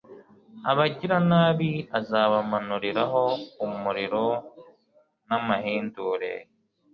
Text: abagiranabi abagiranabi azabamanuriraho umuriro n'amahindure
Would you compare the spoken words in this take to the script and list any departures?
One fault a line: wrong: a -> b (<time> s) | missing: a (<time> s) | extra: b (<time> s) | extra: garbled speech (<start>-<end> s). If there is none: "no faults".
missing: abagiranabi (1.7 s)